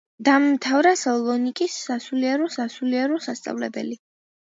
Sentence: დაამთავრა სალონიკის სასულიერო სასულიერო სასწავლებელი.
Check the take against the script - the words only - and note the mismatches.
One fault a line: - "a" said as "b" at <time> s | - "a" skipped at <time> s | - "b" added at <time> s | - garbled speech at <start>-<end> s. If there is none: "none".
none